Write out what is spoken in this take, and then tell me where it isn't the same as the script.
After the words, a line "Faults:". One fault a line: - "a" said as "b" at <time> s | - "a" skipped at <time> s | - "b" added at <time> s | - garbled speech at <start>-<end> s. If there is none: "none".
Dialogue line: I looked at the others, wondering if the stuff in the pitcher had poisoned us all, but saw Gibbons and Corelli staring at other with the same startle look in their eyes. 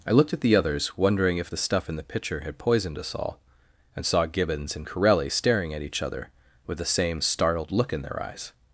I looked at the others, wondering if the stuff in the pitcher had poisoned us all, and saw Gibbons and Corelli staring at each other with the same startled look in their eyes.
Faults:
- "but" said as "and" at 3.9 s
- "each" added at 5.8 s
- "startle" said as "startled" at 7.2 s